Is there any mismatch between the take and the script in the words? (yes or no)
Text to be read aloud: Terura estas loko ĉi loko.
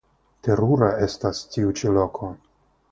yes